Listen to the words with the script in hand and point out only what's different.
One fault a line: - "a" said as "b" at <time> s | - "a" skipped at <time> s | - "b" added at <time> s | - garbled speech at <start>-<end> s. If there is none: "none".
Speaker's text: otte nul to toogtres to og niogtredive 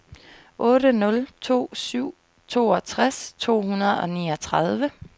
- "syv" added at 1.7 s
- "hundrede" added at 3.6 s